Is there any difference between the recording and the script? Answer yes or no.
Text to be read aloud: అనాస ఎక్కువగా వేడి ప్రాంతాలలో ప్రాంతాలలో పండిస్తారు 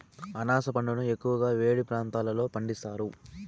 yes